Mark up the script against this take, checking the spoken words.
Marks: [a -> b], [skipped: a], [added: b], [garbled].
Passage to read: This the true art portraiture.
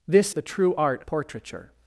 This the true art portraiture.